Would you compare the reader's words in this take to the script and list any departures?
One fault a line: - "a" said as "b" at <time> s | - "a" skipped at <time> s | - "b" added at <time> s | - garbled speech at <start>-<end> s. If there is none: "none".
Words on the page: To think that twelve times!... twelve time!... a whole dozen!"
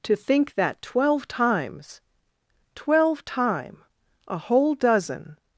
none